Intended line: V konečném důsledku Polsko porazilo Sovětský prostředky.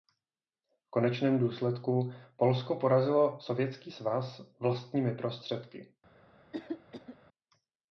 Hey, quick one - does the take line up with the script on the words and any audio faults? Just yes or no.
no